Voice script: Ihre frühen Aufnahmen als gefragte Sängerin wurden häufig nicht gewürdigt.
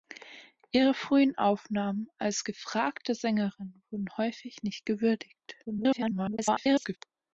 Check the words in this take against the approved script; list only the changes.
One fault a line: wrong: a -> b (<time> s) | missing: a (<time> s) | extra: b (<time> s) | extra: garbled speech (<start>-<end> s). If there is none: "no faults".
extra: garbled speech (5.6-7.0 s)